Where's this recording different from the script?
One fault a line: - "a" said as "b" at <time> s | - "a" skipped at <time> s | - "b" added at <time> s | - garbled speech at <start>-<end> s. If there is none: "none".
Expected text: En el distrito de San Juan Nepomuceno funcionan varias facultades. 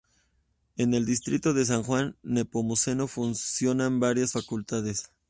none